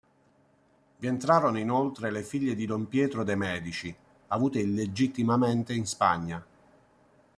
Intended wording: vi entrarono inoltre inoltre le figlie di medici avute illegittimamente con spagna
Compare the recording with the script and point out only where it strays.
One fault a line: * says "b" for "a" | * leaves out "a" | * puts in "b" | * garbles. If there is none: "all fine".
* leaves out "inoltre"
* puts in "don pietro de"
* says "in" for "con"